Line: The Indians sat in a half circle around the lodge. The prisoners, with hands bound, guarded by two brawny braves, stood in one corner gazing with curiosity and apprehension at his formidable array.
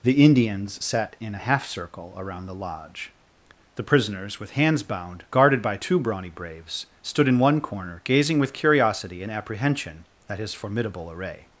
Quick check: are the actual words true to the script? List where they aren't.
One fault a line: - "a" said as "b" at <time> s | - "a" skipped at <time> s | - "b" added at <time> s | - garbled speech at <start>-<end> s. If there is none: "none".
none